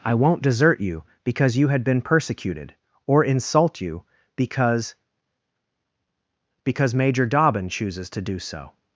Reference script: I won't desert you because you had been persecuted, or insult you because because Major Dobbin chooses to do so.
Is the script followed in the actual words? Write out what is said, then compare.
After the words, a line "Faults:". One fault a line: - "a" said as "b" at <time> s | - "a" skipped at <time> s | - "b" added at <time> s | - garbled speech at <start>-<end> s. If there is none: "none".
I won't desert you because you had been persecuted, or insult you because because Major Dobbin chooses to do so.
Faults:
none